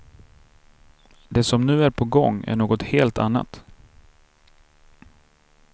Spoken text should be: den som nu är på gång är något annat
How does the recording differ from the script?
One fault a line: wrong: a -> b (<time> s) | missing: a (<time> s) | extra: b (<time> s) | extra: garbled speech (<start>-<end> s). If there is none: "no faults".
wrong: den -> det (1.3 s)
extra: helt (2.8 s)